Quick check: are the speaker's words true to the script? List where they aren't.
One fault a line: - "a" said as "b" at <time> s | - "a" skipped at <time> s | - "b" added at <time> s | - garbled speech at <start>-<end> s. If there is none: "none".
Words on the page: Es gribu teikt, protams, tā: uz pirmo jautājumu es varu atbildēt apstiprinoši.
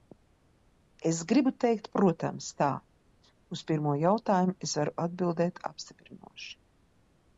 none